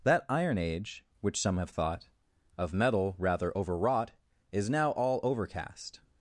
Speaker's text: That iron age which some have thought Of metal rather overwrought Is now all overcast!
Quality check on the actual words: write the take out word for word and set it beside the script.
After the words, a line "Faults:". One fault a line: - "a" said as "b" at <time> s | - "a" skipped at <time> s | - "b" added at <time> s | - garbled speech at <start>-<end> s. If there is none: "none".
That iron age which some have thought Of metal rather overwrought Is now all overcast!
Faults:
none